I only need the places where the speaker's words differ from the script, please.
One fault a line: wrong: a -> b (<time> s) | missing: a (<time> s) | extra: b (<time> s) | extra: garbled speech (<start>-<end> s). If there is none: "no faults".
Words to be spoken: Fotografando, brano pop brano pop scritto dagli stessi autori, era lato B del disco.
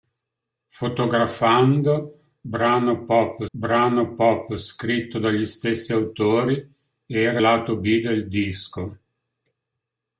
no faults